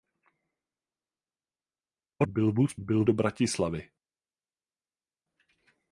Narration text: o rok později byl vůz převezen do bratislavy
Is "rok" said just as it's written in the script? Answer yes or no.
no